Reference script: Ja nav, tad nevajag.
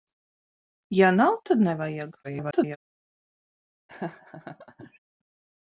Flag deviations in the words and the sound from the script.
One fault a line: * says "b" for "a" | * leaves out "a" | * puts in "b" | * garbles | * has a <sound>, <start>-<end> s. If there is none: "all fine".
* garbles
* has a laugh, 3.9-5.0 s